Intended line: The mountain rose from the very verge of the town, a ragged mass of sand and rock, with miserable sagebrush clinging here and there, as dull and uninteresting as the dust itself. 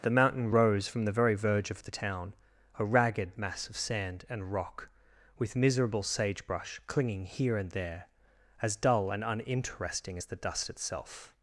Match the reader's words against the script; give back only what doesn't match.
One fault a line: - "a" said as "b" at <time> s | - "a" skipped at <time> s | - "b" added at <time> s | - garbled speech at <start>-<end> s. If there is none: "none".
none